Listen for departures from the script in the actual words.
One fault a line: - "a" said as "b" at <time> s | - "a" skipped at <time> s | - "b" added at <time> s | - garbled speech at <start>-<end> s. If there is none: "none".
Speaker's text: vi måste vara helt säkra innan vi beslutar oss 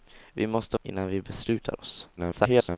- "vara helt säkra" skipped at 0.8 s
- garbled speech at 2.2-2.8 s